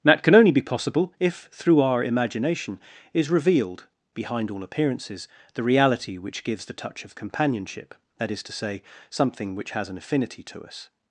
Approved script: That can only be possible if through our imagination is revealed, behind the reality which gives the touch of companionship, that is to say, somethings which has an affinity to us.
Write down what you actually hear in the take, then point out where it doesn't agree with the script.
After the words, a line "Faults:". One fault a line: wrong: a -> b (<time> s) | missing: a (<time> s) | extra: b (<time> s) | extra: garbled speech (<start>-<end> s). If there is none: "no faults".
That can only be possible if through our imagination is revealed, behind all appearances, the reality which gives the touch of companionship, that is to say, something which has an affinity to us.
Faults:
extra: all appearances (4.5 s)
wrong: somethings -> something (9.1 s)